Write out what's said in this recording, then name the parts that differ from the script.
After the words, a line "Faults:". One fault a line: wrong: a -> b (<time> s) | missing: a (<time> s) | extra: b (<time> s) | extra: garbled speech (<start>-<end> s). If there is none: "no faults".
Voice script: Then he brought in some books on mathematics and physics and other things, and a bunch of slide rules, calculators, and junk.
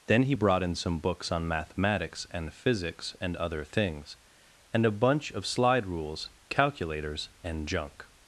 Then he brought in some books on mathematics and physics and other things, and a bunch of slide rules, calculators, and junk.
Faults:
no faults